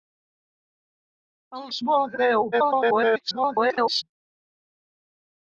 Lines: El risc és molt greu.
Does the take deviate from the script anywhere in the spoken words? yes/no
yes